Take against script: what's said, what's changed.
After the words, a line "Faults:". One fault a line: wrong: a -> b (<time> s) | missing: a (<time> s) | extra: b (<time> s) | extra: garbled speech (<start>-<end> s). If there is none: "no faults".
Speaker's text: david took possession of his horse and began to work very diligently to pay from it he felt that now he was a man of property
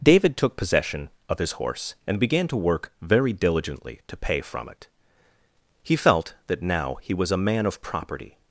david took possession of his horse and began to work very diligently to pay from it he felt that now he was a man of property
Faults:
no faults